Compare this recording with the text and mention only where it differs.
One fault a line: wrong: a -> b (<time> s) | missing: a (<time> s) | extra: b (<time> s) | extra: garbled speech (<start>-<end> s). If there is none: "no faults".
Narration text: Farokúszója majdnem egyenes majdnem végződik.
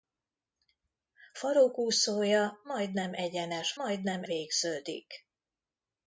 no faults